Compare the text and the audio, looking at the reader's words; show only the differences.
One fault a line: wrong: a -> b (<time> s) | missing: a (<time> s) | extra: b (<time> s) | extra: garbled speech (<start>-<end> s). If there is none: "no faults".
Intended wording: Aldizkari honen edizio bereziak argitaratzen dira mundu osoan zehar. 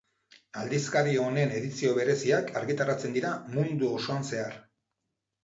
no faults